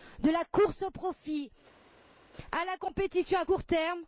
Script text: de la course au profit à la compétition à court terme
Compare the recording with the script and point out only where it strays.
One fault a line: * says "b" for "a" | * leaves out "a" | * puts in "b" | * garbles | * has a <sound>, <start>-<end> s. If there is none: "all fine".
all fine